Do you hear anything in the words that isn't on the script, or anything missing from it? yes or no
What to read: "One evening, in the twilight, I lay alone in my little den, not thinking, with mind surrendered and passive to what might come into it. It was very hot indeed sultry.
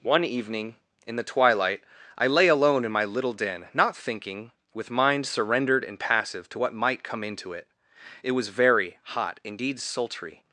no